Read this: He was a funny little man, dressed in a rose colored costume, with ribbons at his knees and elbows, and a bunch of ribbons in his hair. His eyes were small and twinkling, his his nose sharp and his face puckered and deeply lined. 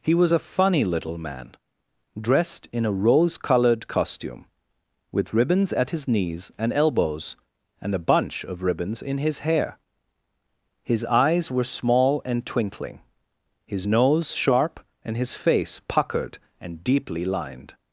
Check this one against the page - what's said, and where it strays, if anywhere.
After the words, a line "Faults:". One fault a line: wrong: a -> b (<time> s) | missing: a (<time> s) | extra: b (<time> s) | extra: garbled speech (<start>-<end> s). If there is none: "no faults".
He was a funny little man, dressed in a rose colored costume, with ribbons at his knees and elbows, and a bunch of ribbons in his hair. His eyes were small and twinkling, his nose sharp and his face puckered and deeply lined.
Faults:
missing: his (13.9 s)